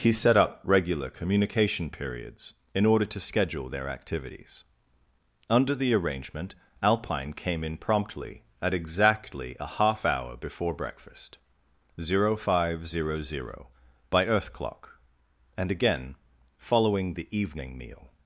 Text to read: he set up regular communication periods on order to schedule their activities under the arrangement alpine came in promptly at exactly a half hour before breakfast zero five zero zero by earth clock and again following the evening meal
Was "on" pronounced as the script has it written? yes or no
no